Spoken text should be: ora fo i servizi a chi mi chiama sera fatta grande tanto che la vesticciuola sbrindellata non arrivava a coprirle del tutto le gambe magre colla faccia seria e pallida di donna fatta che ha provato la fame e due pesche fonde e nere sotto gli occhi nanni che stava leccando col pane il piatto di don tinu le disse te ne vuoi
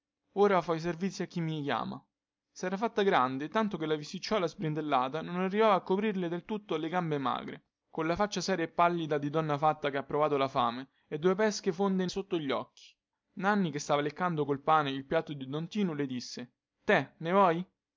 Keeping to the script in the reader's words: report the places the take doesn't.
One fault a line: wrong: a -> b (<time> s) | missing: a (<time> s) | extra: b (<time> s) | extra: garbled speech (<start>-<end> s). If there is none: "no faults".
missing: nere (12.1 s)